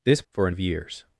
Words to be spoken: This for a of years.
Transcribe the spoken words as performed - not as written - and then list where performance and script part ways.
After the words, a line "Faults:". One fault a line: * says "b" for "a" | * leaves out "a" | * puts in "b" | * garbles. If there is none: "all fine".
This for a of years.
Faults:
all fine